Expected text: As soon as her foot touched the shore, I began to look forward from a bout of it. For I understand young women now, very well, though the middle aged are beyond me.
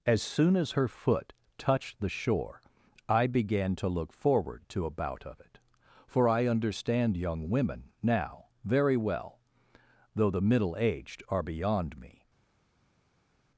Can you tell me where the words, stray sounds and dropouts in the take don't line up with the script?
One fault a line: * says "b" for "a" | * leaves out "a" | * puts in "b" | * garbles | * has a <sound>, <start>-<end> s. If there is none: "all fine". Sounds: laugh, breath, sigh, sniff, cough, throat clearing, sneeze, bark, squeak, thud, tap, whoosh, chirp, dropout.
* says "to" for "from"